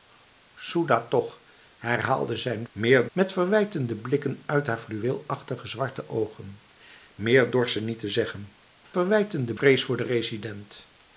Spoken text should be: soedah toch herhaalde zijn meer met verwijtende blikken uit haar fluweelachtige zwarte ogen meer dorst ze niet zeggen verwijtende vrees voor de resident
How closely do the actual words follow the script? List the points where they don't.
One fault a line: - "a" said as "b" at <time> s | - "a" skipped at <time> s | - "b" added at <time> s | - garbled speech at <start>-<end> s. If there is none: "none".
none